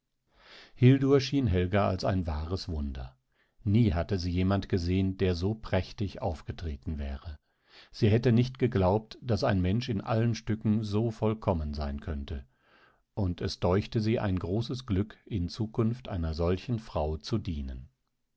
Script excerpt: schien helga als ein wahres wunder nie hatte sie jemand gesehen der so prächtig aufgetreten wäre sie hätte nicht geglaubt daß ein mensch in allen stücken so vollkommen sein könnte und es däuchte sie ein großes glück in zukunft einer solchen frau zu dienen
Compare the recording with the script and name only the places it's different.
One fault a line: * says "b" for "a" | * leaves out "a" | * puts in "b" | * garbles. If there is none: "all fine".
all fine